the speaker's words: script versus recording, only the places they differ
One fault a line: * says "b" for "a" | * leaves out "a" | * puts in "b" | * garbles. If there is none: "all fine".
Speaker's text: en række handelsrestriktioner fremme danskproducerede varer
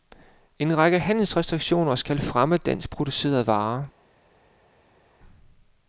* puts in "skal"